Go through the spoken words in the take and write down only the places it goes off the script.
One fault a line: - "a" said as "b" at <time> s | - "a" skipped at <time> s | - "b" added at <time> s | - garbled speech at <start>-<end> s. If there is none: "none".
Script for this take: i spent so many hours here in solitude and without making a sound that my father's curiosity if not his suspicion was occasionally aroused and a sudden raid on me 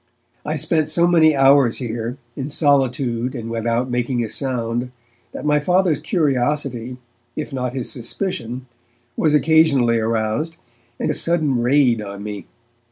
none